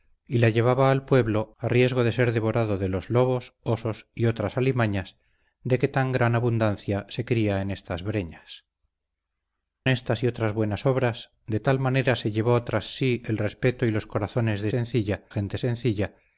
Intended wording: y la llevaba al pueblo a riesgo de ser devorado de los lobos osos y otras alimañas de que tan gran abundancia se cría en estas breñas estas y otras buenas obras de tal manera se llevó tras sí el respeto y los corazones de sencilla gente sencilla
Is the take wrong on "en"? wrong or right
right